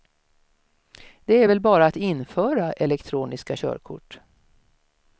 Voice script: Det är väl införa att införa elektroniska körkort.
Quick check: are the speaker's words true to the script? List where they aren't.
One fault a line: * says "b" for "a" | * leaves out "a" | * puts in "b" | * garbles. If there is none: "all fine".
* says "bara" for "införa"